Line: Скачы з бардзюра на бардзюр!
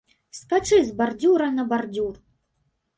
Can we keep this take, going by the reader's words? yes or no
yes